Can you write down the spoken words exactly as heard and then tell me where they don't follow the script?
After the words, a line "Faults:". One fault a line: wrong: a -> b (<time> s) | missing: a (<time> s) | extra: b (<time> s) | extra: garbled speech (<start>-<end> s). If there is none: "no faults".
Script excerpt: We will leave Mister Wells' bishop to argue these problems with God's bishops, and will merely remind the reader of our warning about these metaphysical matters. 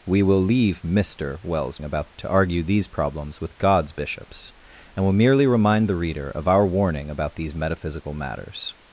We will leave Mister Wells' about to argue these problems with God's bishops, and will merely remind the reader of our warning about these metaphysical matters.
Faults:
wrong: bishop -> about (1.8 s)